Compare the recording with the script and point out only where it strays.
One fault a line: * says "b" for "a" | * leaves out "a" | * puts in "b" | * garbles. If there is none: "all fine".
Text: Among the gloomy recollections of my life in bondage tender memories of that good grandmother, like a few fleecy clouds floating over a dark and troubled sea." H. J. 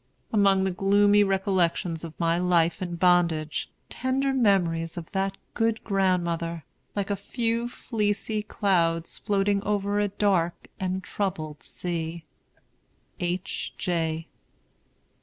all fine